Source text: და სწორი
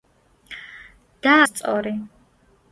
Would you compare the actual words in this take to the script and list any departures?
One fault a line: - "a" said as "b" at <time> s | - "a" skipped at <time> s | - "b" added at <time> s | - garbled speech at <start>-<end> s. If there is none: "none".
none